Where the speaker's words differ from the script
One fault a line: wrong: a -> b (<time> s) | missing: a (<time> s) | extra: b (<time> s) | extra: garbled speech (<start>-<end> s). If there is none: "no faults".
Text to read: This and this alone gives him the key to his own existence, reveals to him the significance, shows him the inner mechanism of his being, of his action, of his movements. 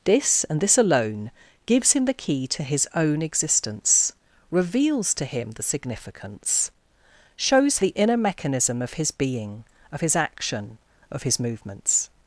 missing: him (7.8 s)